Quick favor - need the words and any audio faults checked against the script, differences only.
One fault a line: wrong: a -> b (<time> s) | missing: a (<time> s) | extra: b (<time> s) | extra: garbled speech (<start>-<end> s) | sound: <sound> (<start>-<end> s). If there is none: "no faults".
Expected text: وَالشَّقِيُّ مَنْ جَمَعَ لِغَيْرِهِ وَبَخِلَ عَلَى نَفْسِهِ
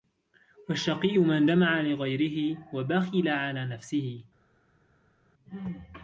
no faults